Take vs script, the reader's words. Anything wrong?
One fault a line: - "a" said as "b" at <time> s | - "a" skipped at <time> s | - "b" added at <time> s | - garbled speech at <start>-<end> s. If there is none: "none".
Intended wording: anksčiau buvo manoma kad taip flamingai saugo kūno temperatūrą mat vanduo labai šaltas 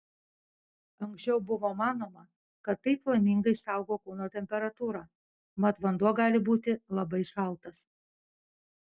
- "gali būti" added at 6.2 s